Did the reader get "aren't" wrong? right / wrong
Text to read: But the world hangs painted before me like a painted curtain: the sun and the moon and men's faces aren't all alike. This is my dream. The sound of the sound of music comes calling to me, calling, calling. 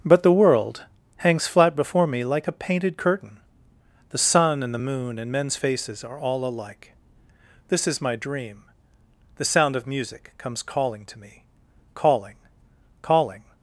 wrong